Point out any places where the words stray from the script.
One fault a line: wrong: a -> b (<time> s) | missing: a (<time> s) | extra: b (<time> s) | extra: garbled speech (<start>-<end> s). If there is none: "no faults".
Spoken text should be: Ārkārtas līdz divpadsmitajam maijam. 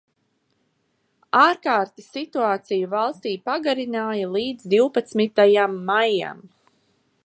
extra: situāciju valstī pagarināja (2.2 s)